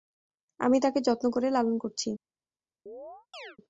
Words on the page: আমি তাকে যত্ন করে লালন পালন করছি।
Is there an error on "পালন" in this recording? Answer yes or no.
yes